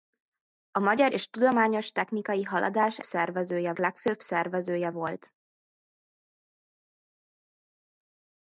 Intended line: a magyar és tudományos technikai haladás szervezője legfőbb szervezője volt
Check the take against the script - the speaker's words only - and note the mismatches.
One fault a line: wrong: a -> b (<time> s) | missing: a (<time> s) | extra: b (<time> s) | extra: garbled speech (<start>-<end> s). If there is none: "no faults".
no faults